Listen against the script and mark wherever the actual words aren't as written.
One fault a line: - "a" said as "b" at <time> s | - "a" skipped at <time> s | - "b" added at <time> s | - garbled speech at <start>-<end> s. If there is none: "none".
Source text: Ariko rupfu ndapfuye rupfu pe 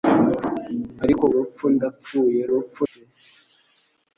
none